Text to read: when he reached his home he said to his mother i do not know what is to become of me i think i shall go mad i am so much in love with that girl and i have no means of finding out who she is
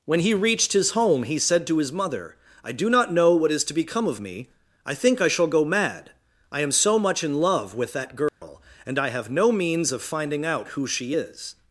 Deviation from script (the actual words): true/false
false